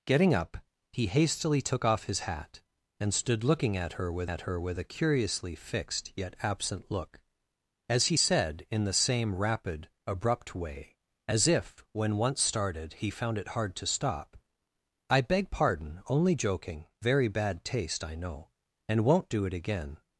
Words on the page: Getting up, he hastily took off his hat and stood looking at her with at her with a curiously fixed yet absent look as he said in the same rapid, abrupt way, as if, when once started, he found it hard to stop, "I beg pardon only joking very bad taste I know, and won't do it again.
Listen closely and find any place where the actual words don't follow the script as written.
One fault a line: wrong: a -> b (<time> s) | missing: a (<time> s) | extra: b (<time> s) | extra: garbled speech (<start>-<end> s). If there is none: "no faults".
no faults